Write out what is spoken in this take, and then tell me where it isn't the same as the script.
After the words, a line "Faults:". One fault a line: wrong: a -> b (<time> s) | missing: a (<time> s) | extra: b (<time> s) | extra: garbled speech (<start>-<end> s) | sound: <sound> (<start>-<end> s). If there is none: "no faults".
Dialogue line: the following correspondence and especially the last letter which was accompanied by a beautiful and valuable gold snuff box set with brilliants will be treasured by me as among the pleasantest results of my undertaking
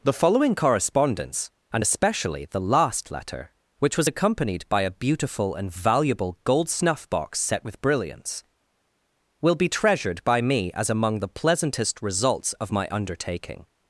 the following correspondence and especially the last letter which was accompanied by a beautiful and valuable gold snuff box set with brilliants will be treasured by me as among the pleasantest results of my undertaking
Faults:
no faults